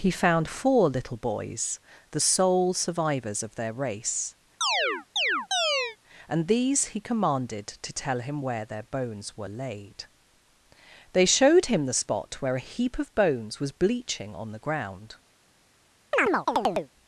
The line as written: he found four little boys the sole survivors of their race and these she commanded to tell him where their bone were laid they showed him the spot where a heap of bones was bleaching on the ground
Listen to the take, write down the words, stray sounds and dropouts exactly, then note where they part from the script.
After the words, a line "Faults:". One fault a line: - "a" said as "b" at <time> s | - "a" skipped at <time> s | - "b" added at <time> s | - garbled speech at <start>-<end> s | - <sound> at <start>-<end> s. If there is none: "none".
he found four little boys the sole survivors of their race and these he commanded to tell him where their bones were laid they showed him the spot where a heap of bones was bleaching on the ground
Faults:
- chirp at 4.6-6.0 s
- "she" said as "he" at 6.9 s
- "bone" said as "bones" at 8.8 s
- chirp at 16.1-16.9 s